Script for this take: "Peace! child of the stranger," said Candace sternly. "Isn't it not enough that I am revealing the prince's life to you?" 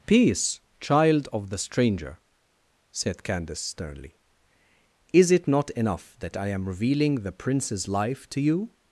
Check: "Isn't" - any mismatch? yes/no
yes